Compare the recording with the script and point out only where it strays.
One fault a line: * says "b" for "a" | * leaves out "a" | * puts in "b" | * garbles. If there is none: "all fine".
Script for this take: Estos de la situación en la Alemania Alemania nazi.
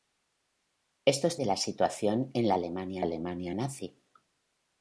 all fine